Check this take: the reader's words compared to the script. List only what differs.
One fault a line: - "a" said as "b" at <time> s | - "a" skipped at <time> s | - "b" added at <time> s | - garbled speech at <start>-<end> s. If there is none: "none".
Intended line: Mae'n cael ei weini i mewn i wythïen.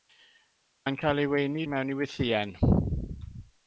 none